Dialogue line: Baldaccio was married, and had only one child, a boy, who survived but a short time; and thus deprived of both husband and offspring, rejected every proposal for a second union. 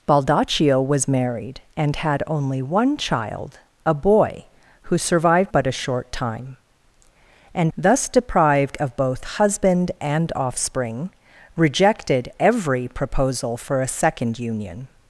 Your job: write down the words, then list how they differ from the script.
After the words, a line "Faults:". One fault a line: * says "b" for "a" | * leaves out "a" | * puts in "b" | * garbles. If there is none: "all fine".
Baldaccio was married, and had only one child, a boy, who survived but a short time; and thus deprived of both husband and offspring, rejected every proposal for a second union.
Faults:
all fine